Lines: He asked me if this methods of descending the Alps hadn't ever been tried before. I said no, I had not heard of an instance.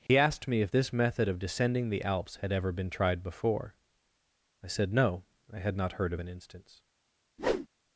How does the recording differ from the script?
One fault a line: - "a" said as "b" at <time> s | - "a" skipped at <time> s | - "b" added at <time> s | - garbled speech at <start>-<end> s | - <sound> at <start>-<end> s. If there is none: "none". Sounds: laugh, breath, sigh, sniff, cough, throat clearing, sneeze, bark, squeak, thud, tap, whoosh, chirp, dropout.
- dropout at 0.1-0.1 s
- "methods" said as "method" at 0.9 s
- "hadn't" said as "had" at 2.4 s
- whoosh at 7.4-7.7 s